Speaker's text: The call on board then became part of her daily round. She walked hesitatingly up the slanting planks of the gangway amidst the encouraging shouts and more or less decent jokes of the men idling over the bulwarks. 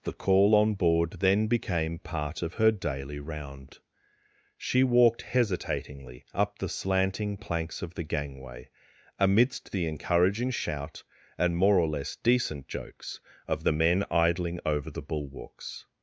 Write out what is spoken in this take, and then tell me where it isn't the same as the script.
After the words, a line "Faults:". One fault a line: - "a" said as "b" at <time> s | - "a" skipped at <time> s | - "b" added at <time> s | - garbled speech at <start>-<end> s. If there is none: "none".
The call on board then became part of her daily round. She walked hesitatingly up the slanting planks of the gangway amidst the encouraging shout and more or less decent jokes of the men idling over the bulwarks.
Faults:
- "shouts" said as "shout" at 10.5 s